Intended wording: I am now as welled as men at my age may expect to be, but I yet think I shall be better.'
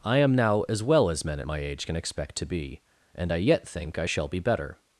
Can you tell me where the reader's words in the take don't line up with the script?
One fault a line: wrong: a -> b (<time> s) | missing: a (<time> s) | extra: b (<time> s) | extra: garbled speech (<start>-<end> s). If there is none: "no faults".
wrong: welled -> well (0.8 s)
wrong: may -> can (1.8 s)
wrong: but -> and (3.1 s)